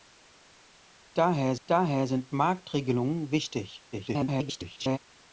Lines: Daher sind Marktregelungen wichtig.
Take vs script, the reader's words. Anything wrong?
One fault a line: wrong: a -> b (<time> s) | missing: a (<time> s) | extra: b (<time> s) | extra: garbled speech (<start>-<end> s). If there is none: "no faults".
extra: daher (1.7 s)
extra: garbled speech (3.9-5.0 s)